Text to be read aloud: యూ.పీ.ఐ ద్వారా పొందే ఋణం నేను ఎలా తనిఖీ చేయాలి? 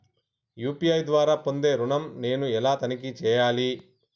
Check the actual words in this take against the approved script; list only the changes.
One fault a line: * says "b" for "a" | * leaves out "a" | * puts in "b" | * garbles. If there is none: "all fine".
all fine